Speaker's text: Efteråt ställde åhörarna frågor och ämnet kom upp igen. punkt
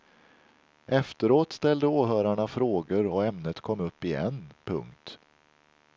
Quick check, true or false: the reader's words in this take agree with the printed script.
true